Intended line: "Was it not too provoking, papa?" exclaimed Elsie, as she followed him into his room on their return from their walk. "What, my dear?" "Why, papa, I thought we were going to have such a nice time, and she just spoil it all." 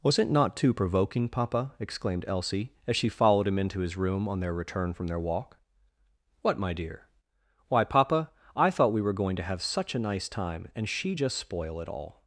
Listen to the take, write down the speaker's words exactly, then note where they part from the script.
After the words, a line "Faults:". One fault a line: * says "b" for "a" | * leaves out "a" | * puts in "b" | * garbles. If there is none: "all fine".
"Was it not too provoking, papa?" exclaimed Elsie, as she followed him into his room on their return from their walk. "What, my dear?" "Why, papa, I thought we were going to have such a nice time, and she just spoil it all."
Faults:
all fine